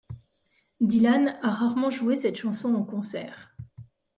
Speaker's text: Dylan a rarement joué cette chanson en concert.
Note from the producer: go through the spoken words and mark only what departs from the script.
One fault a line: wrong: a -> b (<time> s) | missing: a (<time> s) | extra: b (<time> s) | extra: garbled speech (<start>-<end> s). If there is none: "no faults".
no faults